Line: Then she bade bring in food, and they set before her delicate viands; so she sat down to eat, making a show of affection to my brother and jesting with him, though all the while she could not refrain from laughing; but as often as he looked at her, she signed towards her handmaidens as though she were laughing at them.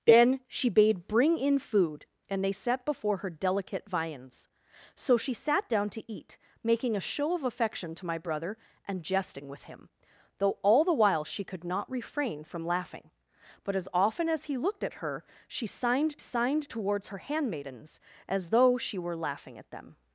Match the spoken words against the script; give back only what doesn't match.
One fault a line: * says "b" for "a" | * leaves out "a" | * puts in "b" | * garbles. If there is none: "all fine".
* puts in "signed"